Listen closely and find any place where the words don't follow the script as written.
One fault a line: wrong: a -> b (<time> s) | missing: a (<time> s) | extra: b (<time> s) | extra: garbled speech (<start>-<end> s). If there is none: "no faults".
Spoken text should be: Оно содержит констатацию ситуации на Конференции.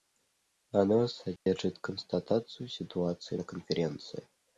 no faults